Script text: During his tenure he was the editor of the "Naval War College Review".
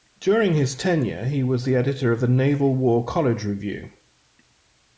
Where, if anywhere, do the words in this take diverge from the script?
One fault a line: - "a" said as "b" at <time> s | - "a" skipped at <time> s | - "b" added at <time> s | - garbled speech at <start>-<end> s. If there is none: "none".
none